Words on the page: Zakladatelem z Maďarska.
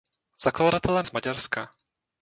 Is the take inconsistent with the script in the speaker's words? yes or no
no